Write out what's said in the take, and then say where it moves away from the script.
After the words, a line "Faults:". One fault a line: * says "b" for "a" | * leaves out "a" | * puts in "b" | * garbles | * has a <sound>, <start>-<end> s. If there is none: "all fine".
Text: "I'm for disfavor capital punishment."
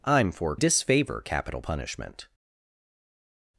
"I'm for disfavor capital punishment."
Faults:
all fine